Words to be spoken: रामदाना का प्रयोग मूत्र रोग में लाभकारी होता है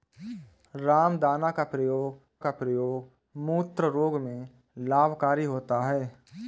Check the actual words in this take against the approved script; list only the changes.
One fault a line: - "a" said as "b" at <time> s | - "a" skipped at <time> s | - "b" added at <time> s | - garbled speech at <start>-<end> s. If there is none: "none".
- "का प्रयोग" added at 2.4 s